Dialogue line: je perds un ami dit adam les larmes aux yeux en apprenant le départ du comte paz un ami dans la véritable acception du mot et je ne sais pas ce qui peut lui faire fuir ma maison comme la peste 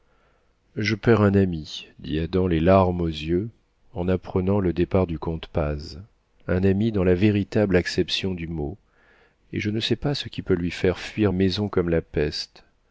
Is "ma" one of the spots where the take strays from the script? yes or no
yes